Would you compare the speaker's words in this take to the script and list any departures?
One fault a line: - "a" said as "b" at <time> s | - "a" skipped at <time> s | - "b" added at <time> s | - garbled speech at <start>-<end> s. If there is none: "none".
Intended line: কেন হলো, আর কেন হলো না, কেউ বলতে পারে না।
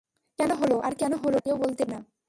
- "না" skipped at 1.4 s
- "পারে" skipped at 1.8 s